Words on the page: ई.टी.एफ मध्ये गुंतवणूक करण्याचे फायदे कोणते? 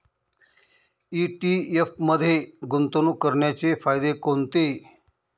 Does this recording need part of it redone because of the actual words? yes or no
no